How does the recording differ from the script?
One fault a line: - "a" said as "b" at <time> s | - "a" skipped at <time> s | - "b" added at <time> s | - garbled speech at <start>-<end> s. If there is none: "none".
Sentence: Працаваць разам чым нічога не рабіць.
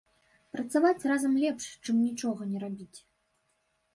- "лепш" added at 1.4 s